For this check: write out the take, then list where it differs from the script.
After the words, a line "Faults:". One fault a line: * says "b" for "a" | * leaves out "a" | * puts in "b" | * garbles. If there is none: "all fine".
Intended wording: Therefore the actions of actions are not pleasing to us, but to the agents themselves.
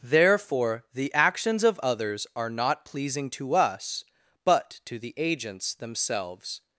Therefore the actions of others are not pleasing to us, but to the agents themselves.
Faults:
* says "others" for "actions"